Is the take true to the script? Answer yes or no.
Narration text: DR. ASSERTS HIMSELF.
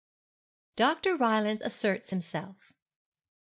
no